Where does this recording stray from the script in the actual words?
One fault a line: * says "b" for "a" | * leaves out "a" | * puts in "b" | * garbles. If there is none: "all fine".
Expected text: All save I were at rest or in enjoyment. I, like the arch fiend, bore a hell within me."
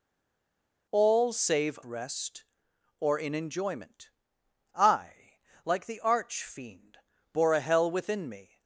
* leaves out "I were at"